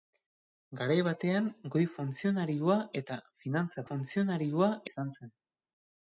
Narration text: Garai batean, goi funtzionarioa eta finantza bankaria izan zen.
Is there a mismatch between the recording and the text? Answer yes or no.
yes